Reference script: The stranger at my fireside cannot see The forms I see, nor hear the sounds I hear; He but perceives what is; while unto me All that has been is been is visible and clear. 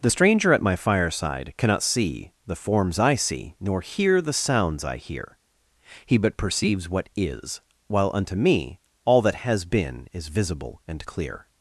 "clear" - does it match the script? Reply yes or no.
yes